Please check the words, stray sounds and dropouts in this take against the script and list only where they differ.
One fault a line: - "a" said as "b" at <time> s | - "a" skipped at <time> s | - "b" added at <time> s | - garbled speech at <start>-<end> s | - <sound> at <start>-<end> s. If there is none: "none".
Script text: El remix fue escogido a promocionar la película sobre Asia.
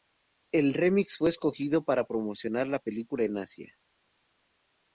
- "a" said as "para" at 1.8 s
- "sobre" said as "en" at 3.2 s